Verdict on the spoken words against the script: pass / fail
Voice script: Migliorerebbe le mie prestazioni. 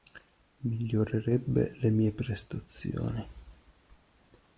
pass